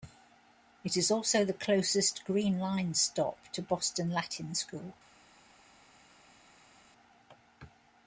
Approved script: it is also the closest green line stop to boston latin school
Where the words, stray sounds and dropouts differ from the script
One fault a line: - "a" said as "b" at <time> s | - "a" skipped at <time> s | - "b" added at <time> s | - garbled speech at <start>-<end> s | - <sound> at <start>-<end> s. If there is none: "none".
none